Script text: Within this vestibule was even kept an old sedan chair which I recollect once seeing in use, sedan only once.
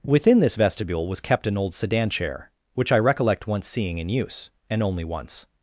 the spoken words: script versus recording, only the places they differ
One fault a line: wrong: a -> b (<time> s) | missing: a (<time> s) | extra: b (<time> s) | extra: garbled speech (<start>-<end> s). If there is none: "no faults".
missing: even (1.2 s)
wrong: sedan -> and (4.7 s)